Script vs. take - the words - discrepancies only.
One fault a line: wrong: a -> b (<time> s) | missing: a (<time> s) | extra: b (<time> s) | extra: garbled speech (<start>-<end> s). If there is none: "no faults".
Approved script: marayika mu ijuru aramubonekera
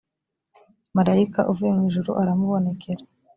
extra: uvuye (1.5 s)